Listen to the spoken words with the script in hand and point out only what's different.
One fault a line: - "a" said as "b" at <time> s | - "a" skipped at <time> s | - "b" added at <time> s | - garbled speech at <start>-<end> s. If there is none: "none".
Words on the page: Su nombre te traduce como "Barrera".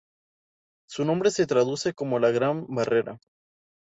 - "te" said as "se" at 1.3 s
- "la Gran" added at 2.2 s